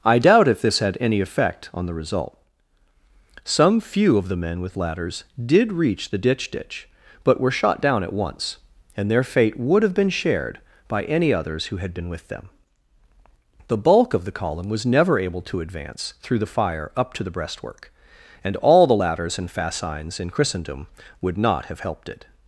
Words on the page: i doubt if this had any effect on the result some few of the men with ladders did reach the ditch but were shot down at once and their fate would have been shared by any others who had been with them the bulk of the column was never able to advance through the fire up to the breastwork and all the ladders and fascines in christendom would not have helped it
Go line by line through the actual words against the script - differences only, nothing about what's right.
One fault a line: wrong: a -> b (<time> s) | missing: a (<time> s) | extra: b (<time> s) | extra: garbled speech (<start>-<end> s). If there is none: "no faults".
extra: ditch (6.5 s)